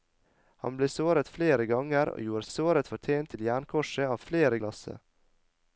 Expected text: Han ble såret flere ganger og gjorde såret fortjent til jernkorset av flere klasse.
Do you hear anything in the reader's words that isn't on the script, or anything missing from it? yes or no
no